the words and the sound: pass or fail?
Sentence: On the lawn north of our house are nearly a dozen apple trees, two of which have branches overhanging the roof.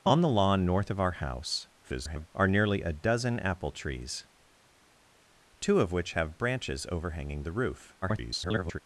fail